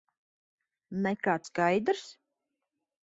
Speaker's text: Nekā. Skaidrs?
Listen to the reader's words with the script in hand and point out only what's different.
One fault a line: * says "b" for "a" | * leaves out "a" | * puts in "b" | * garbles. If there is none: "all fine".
all fine